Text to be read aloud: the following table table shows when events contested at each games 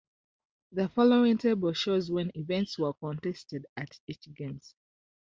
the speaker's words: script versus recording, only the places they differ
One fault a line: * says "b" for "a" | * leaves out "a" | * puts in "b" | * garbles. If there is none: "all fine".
* leaves out "table"
* puts in "were"